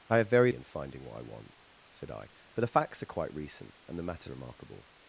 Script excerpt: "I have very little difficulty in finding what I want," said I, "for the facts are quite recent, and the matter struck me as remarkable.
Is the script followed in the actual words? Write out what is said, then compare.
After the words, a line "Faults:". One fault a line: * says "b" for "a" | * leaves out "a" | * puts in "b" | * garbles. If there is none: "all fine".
"I have very in finding what I want," said I, "for the facts are quite recent, and the matter remarkable.
Faults:
* leaves out "little difficulty"
* leaves out "struck me as"